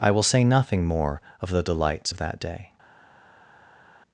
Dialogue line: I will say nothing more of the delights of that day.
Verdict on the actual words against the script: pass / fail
pass